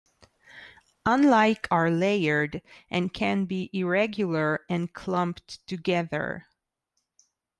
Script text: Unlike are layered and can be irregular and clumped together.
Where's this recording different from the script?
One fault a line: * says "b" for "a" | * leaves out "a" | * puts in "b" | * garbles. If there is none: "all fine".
all fine